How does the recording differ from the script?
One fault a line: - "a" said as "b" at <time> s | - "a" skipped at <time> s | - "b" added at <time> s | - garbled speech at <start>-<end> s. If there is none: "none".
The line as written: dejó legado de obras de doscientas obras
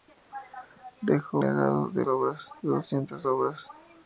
none